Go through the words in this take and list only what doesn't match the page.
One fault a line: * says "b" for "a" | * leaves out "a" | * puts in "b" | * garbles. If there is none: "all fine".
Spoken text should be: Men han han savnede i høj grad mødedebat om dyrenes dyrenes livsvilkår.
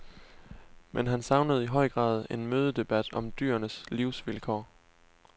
* leaves out "han"
* puts in "en"
* leaves out "dyrenes"